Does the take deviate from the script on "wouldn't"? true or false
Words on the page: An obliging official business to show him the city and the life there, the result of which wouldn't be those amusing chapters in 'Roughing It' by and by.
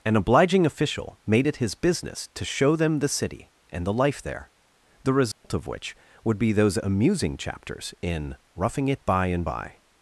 true